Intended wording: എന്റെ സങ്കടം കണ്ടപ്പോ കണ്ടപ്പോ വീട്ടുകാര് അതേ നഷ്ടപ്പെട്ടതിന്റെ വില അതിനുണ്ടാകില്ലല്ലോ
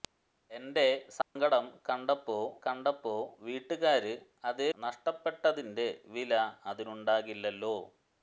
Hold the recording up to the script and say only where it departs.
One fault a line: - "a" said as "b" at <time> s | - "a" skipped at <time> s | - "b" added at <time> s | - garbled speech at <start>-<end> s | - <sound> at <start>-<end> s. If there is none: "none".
- dropout at 1.2-1.4 s